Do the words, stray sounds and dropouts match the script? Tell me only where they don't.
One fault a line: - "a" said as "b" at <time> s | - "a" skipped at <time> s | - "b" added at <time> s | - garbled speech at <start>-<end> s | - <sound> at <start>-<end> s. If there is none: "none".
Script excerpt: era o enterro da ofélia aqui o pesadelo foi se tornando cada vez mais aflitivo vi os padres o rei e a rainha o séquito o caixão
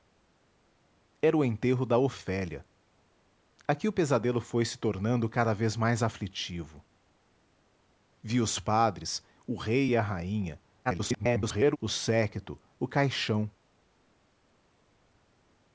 - garbled speech at 10.8-11.8 s